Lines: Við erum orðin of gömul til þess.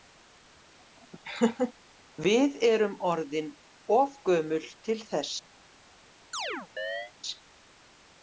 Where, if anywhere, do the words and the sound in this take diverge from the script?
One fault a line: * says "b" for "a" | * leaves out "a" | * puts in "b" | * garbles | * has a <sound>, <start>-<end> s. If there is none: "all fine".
* has a laugh, 1.2-1.7 s
* has a chirp, 6.3-7.1 s